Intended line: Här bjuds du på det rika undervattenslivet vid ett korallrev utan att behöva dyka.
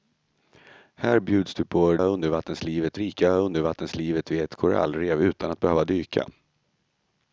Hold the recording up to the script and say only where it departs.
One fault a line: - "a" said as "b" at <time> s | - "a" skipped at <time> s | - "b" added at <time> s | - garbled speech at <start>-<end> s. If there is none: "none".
- "det" said as "undervattenslivet" at 2.0 s